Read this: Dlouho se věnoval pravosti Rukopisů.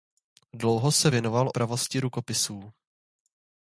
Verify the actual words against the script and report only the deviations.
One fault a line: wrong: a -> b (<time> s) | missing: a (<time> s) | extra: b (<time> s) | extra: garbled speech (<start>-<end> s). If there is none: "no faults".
no faults